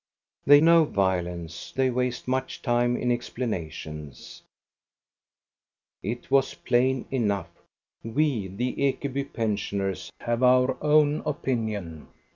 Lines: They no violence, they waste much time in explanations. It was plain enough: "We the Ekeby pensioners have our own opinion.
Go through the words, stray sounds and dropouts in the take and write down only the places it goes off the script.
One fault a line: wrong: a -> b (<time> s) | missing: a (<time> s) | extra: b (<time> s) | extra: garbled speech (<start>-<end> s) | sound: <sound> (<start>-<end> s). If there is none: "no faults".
no faults